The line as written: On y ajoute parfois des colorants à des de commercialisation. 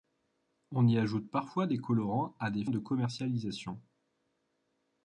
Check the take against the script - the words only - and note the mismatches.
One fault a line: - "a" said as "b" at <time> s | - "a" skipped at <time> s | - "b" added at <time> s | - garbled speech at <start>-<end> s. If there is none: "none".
none